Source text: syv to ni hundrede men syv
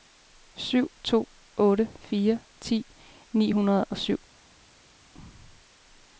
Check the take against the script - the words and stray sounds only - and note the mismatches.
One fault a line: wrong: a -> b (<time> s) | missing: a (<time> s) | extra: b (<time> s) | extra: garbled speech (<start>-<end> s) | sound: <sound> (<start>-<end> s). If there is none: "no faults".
extra: otte fire ti (1.6 s)
wrong: men -> og (3.8 s)